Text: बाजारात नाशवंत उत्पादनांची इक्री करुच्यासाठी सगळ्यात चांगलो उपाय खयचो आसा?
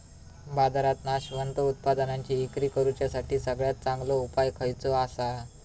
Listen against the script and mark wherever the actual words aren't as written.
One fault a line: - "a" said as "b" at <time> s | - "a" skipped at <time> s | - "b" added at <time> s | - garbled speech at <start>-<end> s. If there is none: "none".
none